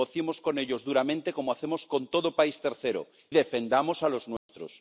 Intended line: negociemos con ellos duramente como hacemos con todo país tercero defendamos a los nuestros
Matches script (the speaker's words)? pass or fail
pass